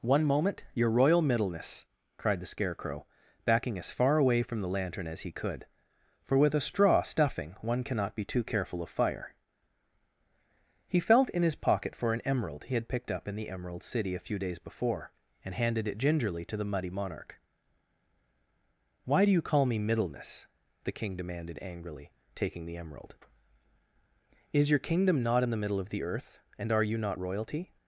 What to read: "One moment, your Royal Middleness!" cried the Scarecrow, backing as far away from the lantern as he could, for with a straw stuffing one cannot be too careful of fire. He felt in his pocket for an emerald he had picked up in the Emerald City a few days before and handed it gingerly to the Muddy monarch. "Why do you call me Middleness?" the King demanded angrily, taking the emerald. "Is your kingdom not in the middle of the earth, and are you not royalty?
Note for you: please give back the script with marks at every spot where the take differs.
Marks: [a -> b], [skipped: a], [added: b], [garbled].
"One moment, your Royal Middleness!" cried the Scarecrow, backing as far away from the lantern as he could, for with a straw stuffing one cannot be too careful of fire. He felt in his pocket for an emerald he had picked up in the Emerald City a few days before and handed it gingerly to the Muddy monarch. "Why do you call me Middleness?" the King demanded angrily, taking the emerald. "Is your kingdom not in the middle of the earth, and are you not royalty?